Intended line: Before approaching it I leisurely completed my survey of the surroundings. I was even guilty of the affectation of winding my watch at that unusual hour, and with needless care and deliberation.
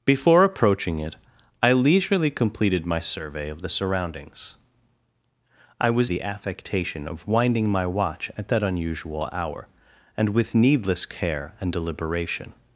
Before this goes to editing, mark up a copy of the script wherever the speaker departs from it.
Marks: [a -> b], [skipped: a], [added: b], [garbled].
Before approaching it I leisurely completed my survey of the surroundings. I was [skipped: even guilty of] the affectation of winding my watch at that unusual hour, and with needless care and deliberation.